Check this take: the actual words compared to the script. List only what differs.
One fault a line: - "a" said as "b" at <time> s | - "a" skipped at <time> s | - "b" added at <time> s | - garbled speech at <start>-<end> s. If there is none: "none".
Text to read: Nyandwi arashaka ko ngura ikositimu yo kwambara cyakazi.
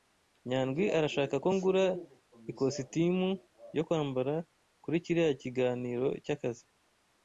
- "kuri kiriya kiganiro" added at 4.8 s